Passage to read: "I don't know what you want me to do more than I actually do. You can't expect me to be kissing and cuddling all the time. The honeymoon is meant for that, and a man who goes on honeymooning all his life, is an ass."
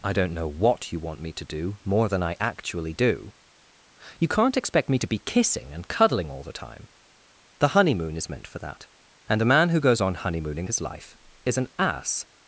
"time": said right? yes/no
yes